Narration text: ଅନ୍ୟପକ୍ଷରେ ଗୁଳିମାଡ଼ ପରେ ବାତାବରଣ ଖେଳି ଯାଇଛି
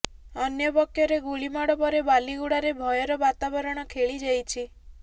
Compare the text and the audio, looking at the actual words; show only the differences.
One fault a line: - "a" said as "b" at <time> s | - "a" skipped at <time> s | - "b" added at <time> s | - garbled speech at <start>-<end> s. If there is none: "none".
- "ବାଲିଗୁଡାରେ ଭୟର" added at 2.1 s